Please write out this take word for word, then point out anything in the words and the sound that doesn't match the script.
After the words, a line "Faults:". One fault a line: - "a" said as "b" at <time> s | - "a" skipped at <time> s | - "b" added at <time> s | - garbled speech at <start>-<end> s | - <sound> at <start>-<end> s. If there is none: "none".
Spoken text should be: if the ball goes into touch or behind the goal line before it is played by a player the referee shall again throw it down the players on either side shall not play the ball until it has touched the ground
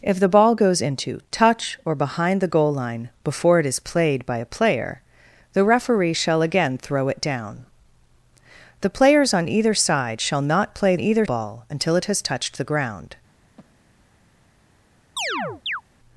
if the ball goes into touch or behind the goal line before it is played by a player the referee shall again throw it down the players on either side shall not play either ball until it has touched the ground
Faults:
- "the" said as "either" at 11.0 s
- breath at 13.6-14.1 s
- chirp at 15.2-15.8 s